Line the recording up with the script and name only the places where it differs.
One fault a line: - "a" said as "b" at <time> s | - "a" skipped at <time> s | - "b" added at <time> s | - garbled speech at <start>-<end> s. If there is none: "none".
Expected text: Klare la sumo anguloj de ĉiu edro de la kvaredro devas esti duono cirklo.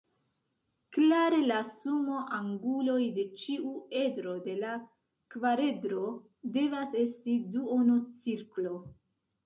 none